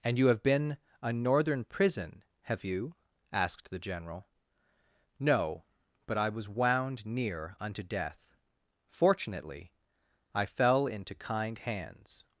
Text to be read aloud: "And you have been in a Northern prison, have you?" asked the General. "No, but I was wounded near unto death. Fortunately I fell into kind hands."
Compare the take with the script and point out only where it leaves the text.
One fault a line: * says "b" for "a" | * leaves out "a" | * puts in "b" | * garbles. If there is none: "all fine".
* leaves out "in"
* says "wound" for "wounded"